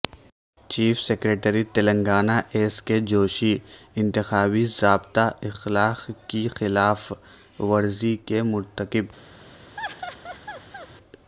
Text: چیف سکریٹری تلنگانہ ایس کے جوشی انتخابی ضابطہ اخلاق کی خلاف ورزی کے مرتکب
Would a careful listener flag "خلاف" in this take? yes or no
no